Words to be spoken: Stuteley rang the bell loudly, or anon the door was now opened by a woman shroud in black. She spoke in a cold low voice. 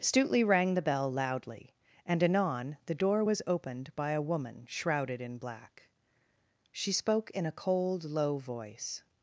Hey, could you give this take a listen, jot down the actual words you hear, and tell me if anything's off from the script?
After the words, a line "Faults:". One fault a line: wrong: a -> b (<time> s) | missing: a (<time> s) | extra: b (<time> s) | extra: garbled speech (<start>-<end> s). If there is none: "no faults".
Stuteley rang the bell loudly, and anon the door was opened by a woman shrouded in black. She spoke in a cold low voice.
Faults:
wrong: or -> and (2.1 s)
missing: now (3.4 s)
wrong: shroud -> shrouded (4.7 s)